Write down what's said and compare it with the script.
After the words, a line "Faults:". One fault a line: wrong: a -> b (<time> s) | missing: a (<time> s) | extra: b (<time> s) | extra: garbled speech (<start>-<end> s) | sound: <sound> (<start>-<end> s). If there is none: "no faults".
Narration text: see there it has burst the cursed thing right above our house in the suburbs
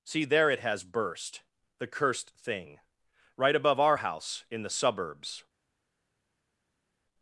see there it has burst the cursed thing right above our house in the suburbs
Faults:
no faults